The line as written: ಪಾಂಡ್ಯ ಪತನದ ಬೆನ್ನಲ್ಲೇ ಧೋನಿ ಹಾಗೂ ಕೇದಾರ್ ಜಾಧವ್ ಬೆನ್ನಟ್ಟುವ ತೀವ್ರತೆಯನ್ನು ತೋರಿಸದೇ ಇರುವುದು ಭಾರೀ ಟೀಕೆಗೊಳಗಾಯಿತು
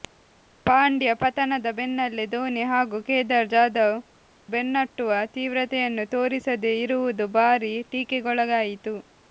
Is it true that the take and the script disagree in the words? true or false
false